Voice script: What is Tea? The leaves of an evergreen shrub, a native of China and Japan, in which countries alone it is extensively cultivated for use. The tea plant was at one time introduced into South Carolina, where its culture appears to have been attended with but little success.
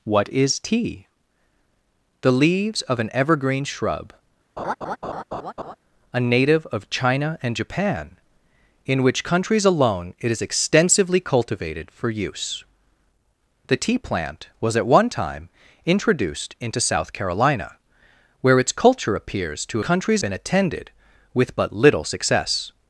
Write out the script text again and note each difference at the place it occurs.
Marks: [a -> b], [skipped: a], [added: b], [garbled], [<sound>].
What is Tea? The leaves of an evergreen shrub, [laugh] a native of China and Japan, in which countries alone it is extensively cultivated for use. The tea plant was at one time introduced into South Carolina, where its culture appears to [have -> countries] been attended with but little success.